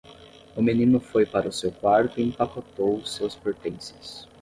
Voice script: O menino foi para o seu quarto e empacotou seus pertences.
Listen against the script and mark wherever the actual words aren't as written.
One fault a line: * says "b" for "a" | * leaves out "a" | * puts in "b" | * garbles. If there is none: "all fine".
all fine